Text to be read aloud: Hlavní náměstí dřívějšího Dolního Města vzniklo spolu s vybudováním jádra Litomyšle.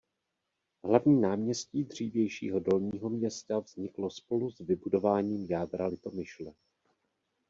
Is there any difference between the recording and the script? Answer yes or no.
no